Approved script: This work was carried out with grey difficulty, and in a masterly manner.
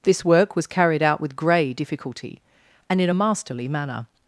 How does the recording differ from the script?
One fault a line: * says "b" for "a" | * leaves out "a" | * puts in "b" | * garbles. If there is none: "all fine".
all fine